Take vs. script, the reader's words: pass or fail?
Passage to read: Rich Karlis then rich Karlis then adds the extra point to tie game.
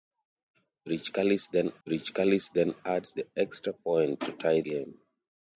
pass